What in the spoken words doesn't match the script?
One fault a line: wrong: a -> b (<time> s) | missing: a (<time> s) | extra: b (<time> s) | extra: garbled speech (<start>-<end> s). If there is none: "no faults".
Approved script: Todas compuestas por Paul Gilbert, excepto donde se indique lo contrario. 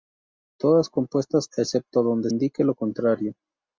missing: por Paul Gilbert (1.5 s)
missing: se (2.3 s)